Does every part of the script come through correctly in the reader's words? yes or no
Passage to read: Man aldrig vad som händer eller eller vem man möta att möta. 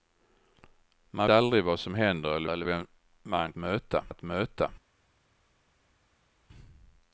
yes